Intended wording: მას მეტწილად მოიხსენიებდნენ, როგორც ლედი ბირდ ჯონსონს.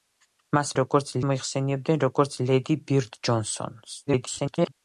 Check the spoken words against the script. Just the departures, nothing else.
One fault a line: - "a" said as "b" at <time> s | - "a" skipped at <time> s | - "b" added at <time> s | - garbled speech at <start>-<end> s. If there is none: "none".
- "მეტწილად" said as "როგორც" at 0.8 s
- garbled speech at 4.1-4.7 s